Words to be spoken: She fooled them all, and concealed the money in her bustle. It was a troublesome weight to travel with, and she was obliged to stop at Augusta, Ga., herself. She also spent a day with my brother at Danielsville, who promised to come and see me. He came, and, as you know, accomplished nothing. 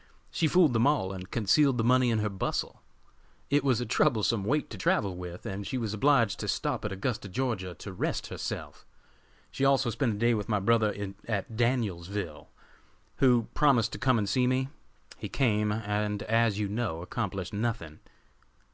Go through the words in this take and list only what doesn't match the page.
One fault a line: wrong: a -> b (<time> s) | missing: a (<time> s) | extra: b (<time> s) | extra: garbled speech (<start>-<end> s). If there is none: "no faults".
extra: to rest (7.7 s)